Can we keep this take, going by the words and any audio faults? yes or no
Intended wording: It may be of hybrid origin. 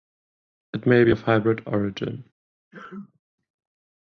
no